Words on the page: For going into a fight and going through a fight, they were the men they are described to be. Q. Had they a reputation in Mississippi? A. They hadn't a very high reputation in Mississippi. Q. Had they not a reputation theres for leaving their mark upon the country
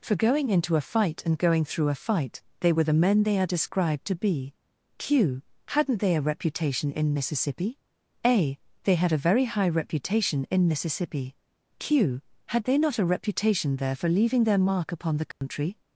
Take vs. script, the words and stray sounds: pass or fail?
fail